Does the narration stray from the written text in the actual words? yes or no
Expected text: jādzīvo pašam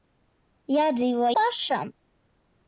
no